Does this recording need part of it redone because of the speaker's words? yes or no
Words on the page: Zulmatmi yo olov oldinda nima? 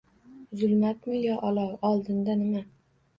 no